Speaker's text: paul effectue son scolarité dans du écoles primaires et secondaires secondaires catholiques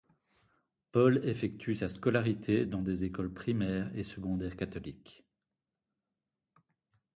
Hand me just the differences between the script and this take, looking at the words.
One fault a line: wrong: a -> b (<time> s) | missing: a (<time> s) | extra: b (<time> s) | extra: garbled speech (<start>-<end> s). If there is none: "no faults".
wrong: son -> sa (1.8 s)
wrong: du -> des (2.8 s)
missing: secondaires (4.5 s)